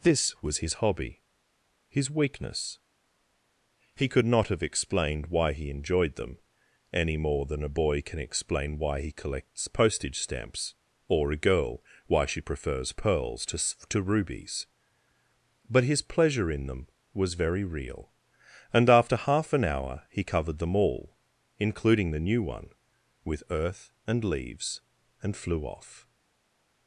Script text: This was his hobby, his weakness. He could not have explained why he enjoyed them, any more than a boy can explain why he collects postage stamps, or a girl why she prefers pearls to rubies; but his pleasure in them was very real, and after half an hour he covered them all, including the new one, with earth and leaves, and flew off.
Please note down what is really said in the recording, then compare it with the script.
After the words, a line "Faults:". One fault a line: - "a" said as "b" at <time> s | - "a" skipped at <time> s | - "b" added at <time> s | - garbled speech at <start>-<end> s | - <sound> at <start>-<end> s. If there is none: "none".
This was his hobby, his weakness. He could not have explained why he enjoyed them, any more than a boy can explain why he collects postage stamps, or a girl why she prefers pearls to to rubies; but his pleasure in them was very real, and after half an hour he covered them all, including the new one, with earth and leaves, and flew off.
Faults:
- "to" added at 13.9 s